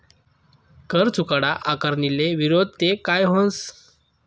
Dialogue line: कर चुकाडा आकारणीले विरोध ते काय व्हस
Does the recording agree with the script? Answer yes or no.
yes